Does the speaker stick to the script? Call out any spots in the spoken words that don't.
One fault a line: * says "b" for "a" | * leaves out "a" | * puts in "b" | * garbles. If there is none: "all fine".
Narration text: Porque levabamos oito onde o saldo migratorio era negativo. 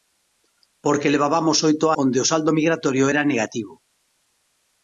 all fine